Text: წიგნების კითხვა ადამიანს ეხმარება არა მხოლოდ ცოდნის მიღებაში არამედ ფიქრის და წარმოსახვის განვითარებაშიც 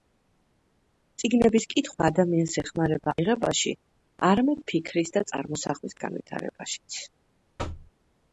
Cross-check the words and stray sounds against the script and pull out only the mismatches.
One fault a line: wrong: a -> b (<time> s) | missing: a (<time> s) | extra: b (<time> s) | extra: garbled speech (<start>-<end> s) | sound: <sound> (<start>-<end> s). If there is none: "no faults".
missing: არა მხოლოდ ცოდნის (3.1 s)
sound: thud (7.6-7.9 s)